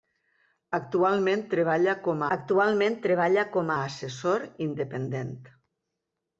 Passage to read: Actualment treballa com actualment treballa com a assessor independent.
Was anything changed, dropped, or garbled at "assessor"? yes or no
no